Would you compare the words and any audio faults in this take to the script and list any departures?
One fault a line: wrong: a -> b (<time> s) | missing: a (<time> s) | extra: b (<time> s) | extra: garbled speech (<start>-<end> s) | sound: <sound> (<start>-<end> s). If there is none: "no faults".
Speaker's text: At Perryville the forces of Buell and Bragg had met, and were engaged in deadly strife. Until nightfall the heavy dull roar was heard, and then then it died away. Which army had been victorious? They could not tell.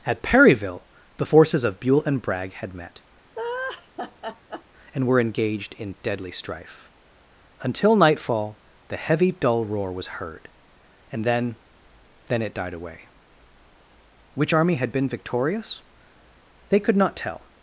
sound: laugh (3.4-4.6 s)